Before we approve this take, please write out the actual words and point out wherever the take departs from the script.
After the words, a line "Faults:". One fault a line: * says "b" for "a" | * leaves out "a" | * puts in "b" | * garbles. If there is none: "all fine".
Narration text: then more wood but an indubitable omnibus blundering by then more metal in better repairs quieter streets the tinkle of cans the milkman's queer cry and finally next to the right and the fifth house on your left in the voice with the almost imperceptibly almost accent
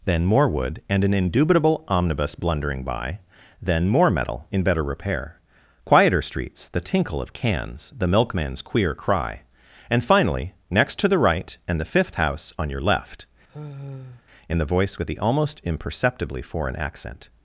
then more wood and an indubitable omnibus blundering by then more metal in better repair quieter streets the tinkle of cans the milkman's queer cry and finally next to the right and the fifth house on your left in the voice with the almost imperceptibly foreign accent
Faults:
* says "and" for "but"
* says "repair" for "repairs"
* says "foreign" for "almost"